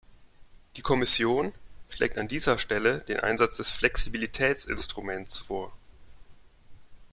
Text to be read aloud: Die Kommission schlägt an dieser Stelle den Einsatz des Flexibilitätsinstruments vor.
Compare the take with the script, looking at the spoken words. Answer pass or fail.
pass